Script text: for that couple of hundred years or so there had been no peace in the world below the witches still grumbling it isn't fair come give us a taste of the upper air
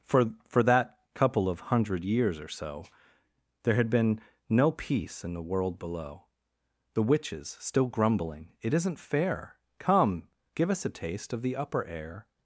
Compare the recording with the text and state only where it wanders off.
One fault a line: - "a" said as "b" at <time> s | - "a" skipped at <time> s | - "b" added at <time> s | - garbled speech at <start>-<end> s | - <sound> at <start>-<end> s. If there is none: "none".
- "for" added at 0.5 s